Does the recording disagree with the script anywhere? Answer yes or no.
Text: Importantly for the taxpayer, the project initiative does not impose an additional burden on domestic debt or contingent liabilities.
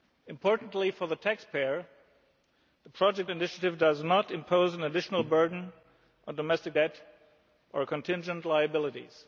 no